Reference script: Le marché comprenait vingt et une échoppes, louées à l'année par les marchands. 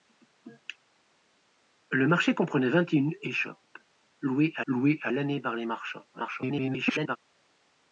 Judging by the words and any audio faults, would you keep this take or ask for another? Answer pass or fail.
fail